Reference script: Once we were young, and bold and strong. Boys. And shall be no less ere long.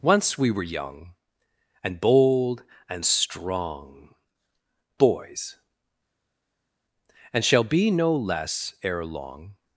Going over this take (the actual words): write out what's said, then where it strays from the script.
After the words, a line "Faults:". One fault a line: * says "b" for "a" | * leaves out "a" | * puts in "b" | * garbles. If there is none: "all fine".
Once we were young, and bold and strong. Boys. And shall be no less ere long.
Faults:
all fine